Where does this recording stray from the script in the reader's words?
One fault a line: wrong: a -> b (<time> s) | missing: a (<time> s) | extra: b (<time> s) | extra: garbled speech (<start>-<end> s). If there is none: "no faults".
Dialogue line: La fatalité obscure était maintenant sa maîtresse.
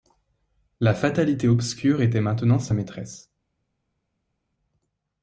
no faults